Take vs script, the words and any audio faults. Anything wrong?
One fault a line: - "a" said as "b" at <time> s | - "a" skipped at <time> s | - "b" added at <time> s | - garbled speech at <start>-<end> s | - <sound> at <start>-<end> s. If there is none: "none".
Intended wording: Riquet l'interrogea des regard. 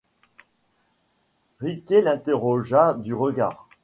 - "des" said as "du" at 2.9 s